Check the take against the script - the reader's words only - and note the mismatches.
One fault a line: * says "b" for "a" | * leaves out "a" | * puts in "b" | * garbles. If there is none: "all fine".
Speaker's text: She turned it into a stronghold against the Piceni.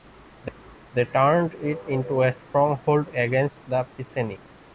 * says "They" for "She"